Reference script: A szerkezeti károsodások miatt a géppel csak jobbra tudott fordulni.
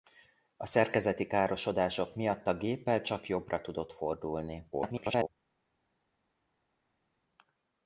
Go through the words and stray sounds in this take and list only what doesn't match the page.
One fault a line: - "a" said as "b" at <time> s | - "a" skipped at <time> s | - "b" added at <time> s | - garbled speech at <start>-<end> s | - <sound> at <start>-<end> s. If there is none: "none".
- garbled speech at 4.7-5.3 s